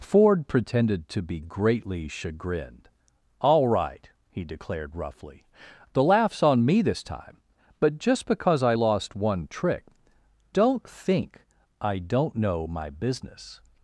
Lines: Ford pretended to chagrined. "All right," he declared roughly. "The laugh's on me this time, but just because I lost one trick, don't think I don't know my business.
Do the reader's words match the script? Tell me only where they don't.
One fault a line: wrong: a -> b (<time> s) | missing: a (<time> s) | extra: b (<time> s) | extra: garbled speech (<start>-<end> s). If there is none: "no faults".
extra: be greatly (1.2 s)